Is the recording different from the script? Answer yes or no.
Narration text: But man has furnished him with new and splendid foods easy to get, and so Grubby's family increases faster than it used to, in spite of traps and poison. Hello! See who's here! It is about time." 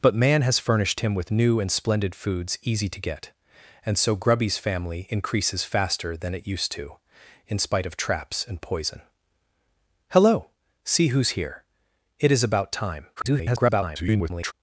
yes